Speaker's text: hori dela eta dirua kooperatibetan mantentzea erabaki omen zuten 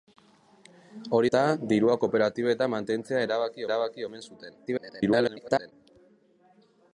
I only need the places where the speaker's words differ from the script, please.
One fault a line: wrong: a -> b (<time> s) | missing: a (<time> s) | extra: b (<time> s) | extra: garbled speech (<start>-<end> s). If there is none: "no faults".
missing: dela (1.3 s)
extra: erabaki (3.7 s)
extra: garbled speech (4.7-5.7 s)